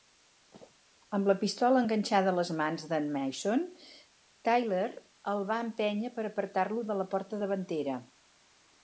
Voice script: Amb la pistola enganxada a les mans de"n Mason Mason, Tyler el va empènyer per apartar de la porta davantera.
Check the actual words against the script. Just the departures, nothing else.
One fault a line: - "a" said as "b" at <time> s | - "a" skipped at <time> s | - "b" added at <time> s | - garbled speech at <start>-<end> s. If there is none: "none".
- "Mason" skipped at 3.7 s
- "lo" added at 6.7 s